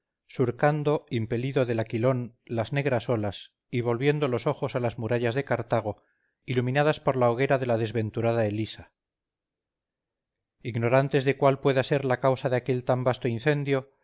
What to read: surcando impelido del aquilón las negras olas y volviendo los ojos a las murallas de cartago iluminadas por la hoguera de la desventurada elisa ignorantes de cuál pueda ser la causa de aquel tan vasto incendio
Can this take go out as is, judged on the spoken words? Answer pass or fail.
pass